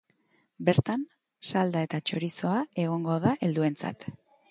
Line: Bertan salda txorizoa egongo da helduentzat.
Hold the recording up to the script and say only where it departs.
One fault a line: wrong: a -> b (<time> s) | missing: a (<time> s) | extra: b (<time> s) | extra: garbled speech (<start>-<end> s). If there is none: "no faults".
extra: eta (1.9 s)